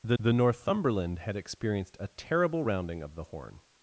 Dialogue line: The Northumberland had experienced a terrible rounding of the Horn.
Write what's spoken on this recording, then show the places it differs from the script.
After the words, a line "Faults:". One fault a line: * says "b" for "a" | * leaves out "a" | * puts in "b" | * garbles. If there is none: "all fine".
The the Northumberland had experienced a terrible rounding of the Horn.
Faults:
* puts in "the"